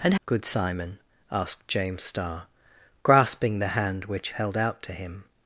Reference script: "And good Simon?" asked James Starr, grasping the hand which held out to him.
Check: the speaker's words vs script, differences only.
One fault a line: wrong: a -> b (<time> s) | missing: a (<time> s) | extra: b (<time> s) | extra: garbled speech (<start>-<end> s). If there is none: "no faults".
no faults